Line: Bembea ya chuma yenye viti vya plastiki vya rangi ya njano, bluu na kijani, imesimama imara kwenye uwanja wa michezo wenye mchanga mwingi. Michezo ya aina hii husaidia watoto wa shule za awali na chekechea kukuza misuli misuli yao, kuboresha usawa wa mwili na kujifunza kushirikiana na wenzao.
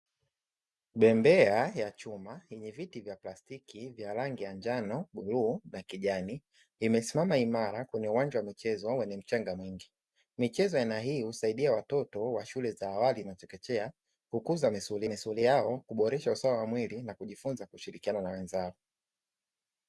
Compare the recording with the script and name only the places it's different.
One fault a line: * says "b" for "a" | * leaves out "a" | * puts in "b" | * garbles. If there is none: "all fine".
all fine